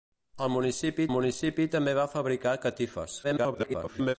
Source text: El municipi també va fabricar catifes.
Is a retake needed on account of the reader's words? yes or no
yes